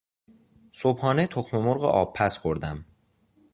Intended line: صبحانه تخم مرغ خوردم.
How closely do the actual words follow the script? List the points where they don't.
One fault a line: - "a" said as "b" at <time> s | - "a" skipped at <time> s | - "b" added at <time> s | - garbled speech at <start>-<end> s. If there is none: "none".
- "آبپز" added at 1.8 s